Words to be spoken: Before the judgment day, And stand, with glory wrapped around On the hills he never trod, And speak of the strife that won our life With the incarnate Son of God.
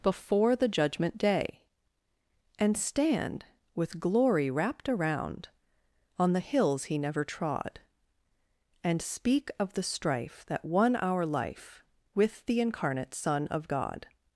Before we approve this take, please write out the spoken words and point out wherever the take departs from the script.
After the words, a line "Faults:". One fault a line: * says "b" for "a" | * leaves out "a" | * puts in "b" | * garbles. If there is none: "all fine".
Before the judgment day, And stand, with glory wrapped around On the hills he never trod, And speak of the strife that won our life With the incarnate Son of God.
Faults:
all fine